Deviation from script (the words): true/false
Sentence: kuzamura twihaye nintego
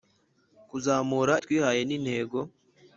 false